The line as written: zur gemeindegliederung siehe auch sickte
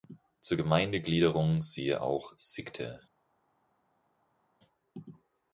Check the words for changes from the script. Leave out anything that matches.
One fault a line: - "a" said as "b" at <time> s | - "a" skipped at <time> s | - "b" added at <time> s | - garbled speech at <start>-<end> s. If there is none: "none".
none